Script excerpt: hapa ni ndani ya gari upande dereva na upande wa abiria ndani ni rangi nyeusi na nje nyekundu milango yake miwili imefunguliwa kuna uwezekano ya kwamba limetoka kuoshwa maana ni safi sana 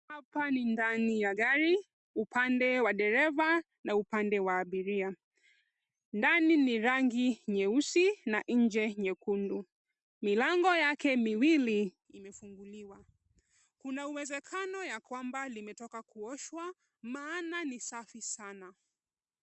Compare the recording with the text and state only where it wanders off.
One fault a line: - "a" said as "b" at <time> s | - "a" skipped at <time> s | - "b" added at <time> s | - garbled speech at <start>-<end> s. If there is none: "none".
- "wa" added at 2.8 s